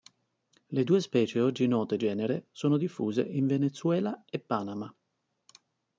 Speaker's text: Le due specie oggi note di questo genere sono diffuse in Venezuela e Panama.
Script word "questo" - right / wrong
wrong